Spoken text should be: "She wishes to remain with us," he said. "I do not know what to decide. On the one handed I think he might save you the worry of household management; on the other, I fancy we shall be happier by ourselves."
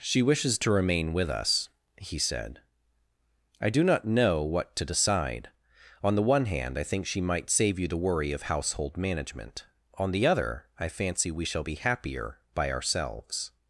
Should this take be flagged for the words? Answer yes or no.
yes